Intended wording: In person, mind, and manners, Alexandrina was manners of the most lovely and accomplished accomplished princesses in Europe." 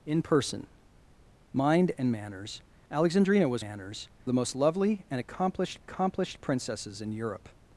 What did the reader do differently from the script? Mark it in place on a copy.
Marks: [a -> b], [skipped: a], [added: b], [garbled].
In person, mind, and manners, Alexandrina was manners of the most lovely and accomplished accomplished princesses in Europe."